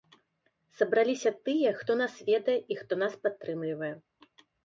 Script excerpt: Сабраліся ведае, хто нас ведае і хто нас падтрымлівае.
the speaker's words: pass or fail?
fail